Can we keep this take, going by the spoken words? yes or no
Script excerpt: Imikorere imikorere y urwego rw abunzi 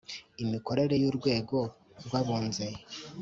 no